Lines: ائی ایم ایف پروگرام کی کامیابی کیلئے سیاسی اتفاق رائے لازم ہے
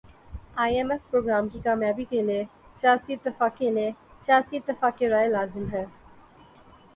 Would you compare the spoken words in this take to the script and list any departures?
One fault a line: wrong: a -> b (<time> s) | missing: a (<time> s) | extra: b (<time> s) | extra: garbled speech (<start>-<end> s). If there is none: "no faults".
extra: کیلئے سیاسی اتفاق (3.6 s)